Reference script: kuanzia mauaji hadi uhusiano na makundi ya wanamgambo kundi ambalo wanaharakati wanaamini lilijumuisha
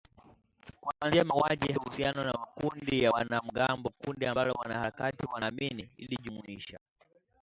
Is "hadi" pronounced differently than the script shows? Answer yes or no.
yes